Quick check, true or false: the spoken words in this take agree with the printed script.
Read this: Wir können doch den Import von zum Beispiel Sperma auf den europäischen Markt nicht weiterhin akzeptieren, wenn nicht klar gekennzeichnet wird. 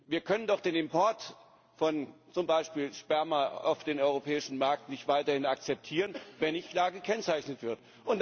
true